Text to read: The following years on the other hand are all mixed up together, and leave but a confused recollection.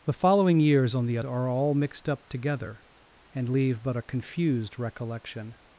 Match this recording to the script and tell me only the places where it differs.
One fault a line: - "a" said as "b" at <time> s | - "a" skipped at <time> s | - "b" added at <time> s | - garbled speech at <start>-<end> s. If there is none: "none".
- "other hand" skipped at 1.2 s